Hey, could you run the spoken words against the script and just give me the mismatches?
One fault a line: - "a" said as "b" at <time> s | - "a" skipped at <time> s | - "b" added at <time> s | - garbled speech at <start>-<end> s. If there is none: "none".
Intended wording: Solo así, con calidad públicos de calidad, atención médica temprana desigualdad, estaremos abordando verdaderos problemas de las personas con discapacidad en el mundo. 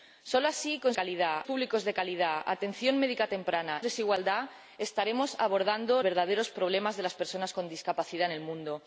none